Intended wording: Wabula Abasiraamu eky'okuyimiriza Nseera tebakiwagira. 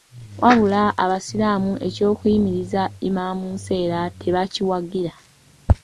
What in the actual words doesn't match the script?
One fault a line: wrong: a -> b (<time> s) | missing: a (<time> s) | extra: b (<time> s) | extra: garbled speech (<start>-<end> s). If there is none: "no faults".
extra: Imam (3.1 s)